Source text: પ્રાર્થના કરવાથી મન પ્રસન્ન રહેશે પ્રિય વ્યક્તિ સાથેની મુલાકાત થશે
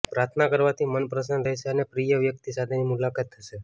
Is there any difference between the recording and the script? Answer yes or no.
yes